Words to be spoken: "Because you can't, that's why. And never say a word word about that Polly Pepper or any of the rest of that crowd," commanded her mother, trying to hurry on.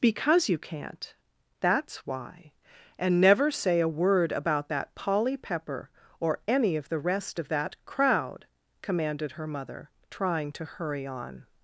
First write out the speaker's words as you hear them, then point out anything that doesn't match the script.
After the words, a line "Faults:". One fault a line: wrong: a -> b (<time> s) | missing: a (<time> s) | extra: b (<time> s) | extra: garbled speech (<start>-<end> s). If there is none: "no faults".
"Because you can't, that's why. And never say a word about that Polly Pepper or any of the rest of that crowd," commanded her mother, trying to hurry on.
Faults:
missing: word (4.3 s)